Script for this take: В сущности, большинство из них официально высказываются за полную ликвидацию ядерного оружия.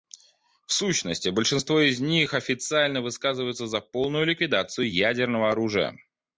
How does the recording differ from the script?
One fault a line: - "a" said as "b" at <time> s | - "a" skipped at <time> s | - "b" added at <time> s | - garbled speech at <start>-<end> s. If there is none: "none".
none